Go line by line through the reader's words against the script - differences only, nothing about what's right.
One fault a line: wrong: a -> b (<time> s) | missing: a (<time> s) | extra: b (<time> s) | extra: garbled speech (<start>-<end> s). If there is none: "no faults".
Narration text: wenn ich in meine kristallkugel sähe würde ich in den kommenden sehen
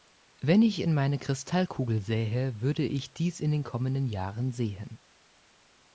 extra: dies (3.1 s)
extra: jahren (4.1 s)